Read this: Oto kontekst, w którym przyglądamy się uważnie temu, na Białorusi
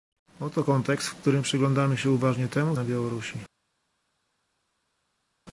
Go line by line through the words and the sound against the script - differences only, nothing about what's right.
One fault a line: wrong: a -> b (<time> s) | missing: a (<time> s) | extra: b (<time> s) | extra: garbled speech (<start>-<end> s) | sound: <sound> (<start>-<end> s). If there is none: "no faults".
no faults